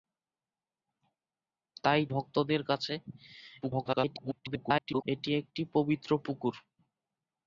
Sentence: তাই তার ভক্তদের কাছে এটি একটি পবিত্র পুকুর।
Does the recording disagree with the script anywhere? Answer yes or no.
yes